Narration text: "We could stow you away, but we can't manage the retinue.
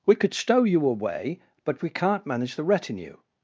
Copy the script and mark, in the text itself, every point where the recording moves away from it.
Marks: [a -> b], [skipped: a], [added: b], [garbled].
"We could stow you away, but we can't manage the retinue.